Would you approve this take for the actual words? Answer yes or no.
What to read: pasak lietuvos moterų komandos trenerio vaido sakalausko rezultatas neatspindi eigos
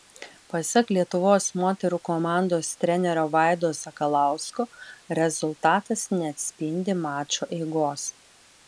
no